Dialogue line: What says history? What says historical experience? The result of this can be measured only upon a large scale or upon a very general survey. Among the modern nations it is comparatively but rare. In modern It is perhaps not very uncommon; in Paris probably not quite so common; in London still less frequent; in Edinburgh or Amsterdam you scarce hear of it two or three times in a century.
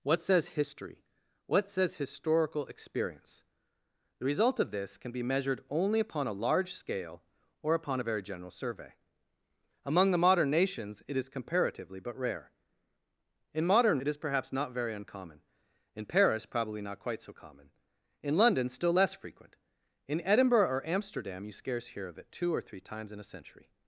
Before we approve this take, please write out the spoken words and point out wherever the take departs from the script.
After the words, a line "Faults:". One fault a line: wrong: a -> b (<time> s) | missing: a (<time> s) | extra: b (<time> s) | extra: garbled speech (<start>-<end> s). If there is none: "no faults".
What says history? What says historical experience? The result of this can be measured only upon a large scale or upon a very general survey. Among the modern nations it is comparatively but rare. In modern It is perhaps not very uncommon; in Paris probably not quite so common; in London still less frequent; in Edinburgh or Amsterdam you scarce hear of it two or three times in a century.
Faults:
no faults